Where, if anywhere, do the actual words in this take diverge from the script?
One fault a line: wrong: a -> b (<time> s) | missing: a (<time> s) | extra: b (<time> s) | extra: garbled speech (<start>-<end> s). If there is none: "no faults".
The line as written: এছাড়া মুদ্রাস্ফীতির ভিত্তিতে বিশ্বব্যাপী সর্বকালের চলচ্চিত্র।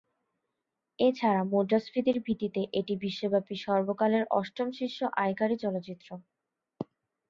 extra: এটি (2.8 s)
extra: অষ্টম শীর্ষ আয়কারী (4.4 s)